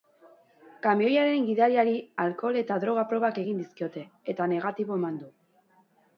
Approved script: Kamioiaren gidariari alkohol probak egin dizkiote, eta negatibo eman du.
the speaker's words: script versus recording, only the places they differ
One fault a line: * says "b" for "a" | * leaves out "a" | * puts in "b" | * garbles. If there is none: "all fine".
* puts in "eta droga"